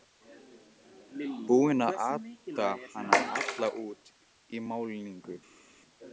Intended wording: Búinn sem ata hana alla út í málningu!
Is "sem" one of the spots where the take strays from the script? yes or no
yes